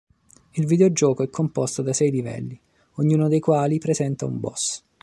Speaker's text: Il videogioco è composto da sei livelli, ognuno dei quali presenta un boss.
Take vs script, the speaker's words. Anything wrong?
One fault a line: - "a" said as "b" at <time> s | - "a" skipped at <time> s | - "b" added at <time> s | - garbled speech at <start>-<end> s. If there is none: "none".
none